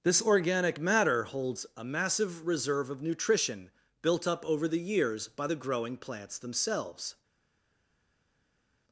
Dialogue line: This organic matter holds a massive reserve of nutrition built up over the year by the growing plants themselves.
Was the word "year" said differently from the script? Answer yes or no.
yes